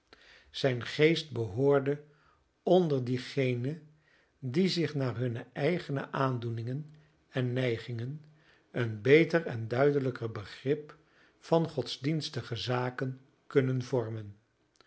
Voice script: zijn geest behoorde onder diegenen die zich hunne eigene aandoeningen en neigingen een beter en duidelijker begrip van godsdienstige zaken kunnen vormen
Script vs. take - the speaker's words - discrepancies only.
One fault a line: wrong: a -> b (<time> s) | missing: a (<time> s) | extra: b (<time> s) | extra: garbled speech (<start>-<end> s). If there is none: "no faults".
extra: naar (5.0 s)